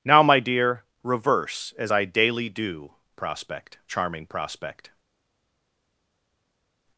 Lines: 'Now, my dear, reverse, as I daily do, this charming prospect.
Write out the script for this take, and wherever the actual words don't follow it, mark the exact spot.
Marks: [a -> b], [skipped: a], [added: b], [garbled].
'Now, my dear, reverse, as I daily do, [this -> prospect] charming prospect.